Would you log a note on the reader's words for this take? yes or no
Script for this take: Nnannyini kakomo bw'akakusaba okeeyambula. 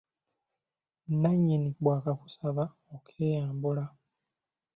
yes